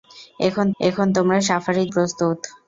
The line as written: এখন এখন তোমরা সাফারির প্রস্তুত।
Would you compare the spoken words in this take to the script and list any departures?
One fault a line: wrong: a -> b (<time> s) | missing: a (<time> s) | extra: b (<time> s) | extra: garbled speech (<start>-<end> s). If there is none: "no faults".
no faults